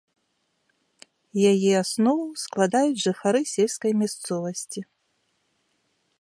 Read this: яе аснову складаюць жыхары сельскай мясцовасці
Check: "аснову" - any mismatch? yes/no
no